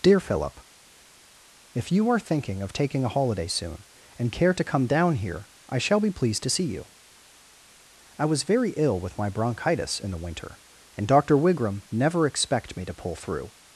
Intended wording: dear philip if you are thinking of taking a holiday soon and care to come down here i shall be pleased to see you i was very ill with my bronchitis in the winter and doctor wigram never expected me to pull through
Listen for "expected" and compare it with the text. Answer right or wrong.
wrong